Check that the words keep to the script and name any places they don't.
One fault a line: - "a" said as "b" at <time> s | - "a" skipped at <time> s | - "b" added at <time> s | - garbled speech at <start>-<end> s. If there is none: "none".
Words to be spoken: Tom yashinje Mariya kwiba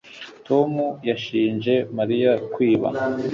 none